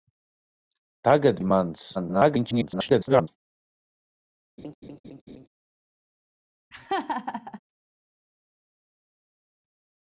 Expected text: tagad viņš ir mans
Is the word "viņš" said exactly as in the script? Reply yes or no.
no